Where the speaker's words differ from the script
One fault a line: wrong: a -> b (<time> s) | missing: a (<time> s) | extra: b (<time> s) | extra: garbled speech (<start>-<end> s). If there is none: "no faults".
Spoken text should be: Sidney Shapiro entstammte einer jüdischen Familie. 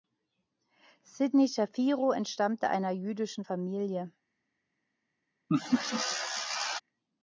no faults